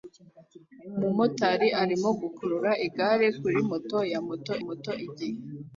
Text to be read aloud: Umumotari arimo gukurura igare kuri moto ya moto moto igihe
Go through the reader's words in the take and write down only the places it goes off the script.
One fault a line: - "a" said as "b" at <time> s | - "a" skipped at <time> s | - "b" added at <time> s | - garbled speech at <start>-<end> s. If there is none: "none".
none